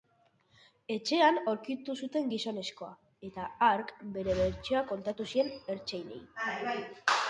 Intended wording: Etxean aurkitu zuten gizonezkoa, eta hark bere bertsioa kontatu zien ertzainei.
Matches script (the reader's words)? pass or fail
pass